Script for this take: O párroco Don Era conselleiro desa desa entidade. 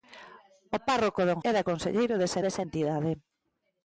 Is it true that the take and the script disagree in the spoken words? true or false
false